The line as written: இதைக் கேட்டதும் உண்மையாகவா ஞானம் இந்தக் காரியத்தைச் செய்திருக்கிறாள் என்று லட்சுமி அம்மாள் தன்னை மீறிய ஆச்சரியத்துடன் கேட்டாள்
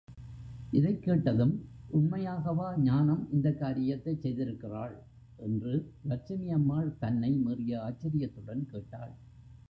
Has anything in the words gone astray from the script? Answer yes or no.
no